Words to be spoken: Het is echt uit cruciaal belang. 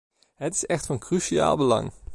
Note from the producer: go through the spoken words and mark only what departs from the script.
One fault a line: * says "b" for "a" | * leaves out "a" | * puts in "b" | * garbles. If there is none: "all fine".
* says "van" for "uit"